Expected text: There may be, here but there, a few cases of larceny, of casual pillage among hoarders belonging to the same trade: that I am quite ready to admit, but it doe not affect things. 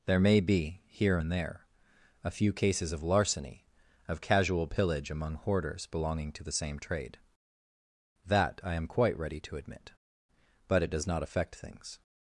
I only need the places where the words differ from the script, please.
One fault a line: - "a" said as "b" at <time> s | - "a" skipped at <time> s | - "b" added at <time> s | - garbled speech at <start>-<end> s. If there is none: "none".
- "but" said as "and" at 1.2 s
- "doe" said as "does" at 10.9 s